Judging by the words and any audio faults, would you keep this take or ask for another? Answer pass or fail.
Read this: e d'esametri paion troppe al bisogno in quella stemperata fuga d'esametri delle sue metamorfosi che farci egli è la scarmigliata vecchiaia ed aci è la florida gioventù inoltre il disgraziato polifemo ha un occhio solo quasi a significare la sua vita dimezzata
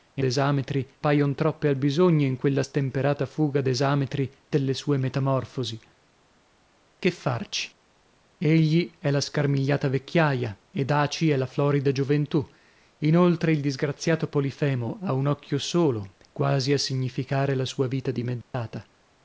fail